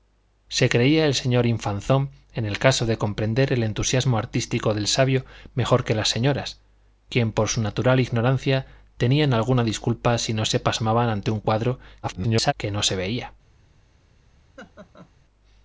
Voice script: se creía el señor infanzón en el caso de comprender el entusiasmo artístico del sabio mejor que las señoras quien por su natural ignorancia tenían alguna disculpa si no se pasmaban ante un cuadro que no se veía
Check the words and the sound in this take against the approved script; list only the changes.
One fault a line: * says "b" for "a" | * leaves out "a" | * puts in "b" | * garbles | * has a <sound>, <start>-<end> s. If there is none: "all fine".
* garbles
* has a laugh, 14.6-15.1 s